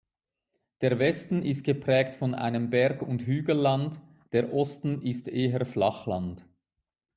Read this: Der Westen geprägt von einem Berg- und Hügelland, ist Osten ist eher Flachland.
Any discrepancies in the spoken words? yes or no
yes